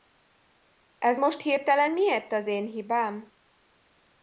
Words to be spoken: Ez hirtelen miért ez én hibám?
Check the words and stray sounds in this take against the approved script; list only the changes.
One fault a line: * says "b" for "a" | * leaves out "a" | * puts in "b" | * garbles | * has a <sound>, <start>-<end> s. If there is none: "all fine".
* puts in "most"
* says "az" for "ez"